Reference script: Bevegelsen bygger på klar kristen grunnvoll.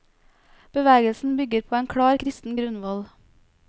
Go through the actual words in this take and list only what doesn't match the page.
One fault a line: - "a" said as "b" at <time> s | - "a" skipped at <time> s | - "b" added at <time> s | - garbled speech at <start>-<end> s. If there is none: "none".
- "en" added at 1.8 s